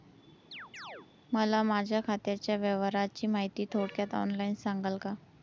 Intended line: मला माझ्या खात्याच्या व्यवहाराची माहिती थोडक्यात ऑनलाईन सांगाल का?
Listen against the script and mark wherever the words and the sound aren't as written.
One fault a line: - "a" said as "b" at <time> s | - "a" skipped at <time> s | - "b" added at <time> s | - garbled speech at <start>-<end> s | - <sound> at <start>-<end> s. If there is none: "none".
- chirp at 0.5-1.1 s